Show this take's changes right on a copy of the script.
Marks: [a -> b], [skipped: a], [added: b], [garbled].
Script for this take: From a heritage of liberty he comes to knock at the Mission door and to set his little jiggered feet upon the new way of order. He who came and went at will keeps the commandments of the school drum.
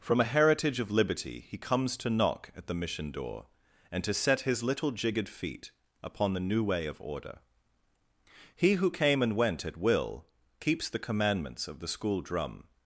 From a heritage of liberty he comes to knock at the Mission door and to set his little jiggered feet upon the new way of order. He who came and went at will keeps the commandments of the school drum.